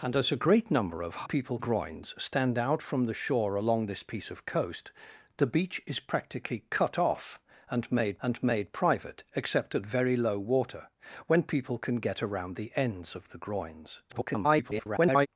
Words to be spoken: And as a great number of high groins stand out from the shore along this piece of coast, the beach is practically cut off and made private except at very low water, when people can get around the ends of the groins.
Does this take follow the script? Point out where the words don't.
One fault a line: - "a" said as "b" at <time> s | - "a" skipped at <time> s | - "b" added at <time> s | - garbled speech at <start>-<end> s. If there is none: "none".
- "high" said as "people" at 1.2 s
- "and made" added at 8.2 s
- garbled speech at 14.1-15.3 s